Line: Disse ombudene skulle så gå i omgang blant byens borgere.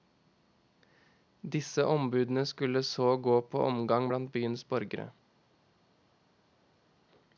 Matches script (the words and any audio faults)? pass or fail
fail